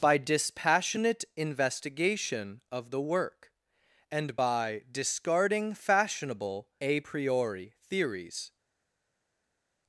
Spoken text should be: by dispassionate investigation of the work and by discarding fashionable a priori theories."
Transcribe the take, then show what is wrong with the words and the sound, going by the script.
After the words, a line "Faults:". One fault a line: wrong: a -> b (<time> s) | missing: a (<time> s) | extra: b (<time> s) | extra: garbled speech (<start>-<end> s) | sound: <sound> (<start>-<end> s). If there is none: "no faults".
by dispassionate investigation of the work and by discarding fashionable a priori theories."
Faults:
no faults